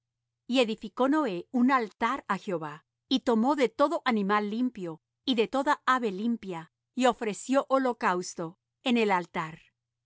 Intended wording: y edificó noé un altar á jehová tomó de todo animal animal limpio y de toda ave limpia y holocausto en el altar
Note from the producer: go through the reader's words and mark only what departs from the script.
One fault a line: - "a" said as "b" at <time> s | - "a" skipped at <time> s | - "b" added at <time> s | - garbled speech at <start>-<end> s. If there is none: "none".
- "y" added at 3.1 s
- "animal" skipped at 4.5 s
- "ofreció" added at 7.1 s